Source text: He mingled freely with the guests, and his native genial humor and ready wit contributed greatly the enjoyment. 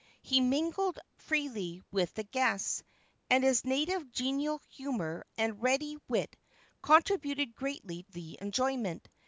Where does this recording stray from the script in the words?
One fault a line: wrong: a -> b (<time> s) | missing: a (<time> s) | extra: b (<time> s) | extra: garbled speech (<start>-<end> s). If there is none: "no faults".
no faults